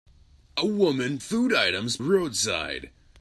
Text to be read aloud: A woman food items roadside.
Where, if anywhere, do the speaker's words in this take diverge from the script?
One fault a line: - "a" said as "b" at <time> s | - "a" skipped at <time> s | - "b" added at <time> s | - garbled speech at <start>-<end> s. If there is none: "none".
none